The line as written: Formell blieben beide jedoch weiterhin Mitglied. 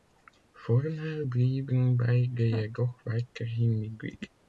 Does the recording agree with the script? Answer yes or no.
yes